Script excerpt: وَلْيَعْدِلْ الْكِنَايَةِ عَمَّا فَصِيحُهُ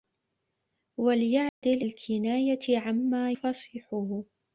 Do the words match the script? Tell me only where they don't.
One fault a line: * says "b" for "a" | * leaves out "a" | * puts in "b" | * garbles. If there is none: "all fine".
all fine